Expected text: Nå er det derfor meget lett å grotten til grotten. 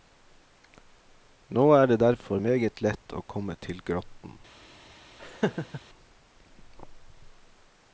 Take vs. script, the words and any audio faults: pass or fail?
fail